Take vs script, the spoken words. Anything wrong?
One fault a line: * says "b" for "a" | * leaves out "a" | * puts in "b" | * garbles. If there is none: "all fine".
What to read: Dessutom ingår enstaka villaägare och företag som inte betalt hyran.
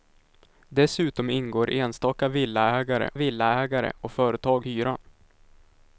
* puts in "villaägare"
* leaves out "som inte betalt"